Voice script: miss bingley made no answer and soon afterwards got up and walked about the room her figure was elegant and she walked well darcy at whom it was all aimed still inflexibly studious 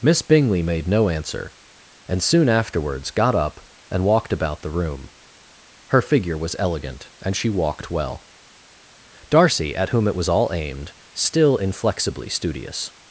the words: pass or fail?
pass